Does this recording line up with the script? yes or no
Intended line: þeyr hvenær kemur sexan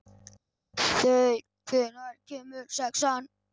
yes